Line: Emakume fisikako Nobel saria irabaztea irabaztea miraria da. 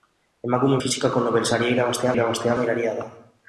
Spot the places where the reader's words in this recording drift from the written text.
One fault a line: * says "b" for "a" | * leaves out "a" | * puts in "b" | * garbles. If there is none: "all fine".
all fine